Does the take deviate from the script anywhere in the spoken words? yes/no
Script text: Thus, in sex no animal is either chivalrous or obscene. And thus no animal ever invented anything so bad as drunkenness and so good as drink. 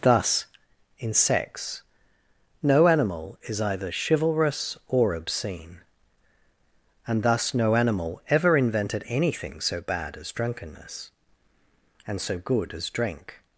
no